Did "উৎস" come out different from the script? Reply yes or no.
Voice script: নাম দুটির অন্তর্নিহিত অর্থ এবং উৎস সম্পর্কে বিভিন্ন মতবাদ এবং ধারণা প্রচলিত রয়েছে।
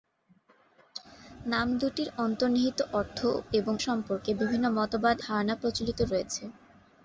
yes